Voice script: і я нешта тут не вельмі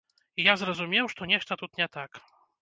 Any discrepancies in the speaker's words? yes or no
yes